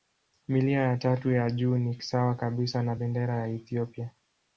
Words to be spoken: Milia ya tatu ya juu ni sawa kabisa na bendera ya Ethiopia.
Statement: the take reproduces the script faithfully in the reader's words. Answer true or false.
true